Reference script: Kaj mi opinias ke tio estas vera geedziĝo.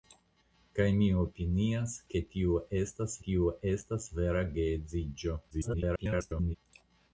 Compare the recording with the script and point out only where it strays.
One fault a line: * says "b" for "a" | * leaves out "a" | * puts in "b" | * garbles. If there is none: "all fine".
* puts in "tio estas"
* garbles